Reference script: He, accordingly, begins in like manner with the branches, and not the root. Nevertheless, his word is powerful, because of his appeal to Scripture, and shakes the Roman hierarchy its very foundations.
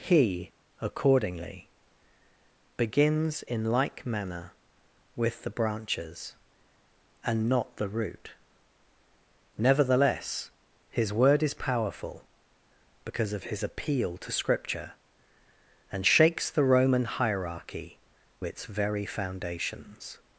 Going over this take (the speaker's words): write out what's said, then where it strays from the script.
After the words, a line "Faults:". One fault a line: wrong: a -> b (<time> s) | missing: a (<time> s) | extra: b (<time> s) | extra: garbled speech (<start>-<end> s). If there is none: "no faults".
He, accordingly, begins in like manner with the branches, and not the root. Nevertheless, his word is powerful, because of his appeal to Scripture, and shakes the Roman hierarchy its very foundations.
Faults:
no faults